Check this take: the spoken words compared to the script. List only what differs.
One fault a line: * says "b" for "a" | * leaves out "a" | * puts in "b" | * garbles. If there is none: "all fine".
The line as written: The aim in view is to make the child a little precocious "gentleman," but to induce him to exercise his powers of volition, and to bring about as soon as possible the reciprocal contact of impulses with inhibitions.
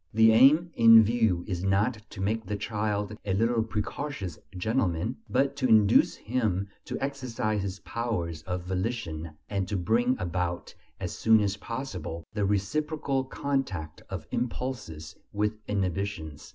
* puts in "not"